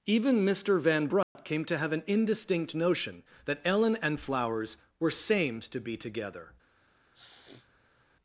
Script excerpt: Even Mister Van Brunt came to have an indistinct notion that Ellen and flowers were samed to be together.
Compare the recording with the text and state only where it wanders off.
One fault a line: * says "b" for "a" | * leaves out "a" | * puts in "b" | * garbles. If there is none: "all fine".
all fine